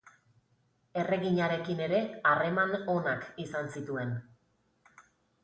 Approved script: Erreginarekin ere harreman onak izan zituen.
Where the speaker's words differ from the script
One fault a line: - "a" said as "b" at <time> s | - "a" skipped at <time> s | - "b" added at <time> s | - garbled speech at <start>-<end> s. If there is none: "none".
none